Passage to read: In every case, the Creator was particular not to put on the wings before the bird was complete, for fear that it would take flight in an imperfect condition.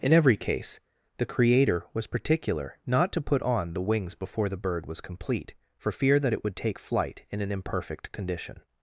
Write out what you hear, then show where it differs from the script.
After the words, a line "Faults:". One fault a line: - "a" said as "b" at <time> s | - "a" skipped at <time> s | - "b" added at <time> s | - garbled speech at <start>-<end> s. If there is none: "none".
In every case, the Creator was particular not to put on the wings before the bird was complete, for fear that it would take flight in an imperfect condition.
Faults:
none